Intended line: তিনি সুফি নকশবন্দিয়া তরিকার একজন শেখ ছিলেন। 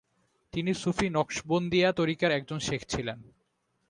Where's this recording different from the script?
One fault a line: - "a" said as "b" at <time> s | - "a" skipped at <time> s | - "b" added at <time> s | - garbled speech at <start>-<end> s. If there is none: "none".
none